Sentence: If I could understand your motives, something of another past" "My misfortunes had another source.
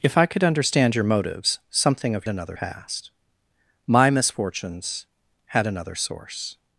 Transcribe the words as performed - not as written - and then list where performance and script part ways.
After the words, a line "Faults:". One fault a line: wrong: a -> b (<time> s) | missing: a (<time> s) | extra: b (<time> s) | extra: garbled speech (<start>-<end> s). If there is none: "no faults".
If I could understand your motives, something of another past" "My misfortunes had another source.
Faults:
no faults